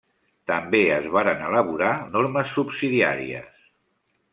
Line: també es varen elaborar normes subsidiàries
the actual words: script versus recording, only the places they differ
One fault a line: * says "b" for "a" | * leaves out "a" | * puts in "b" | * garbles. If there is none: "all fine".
all fine